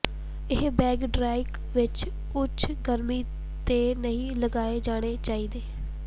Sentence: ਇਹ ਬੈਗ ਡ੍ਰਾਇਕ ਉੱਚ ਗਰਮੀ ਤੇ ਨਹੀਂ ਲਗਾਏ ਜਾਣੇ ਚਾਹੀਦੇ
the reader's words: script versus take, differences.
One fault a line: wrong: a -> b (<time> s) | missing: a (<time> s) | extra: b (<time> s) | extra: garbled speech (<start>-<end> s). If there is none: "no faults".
extra: ਵਿੱਚ (1.7 s)